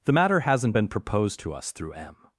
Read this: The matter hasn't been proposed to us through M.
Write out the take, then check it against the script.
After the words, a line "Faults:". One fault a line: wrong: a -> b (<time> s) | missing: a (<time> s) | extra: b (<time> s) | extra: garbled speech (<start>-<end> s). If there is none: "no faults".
The matter hasn't been proposed to us through M.
Faults:
no faults